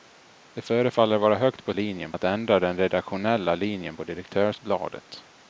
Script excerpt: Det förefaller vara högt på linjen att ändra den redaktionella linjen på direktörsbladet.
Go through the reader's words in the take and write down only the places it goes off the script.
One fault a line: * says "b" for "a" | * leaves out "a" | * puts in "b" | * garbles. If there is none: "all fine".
all fine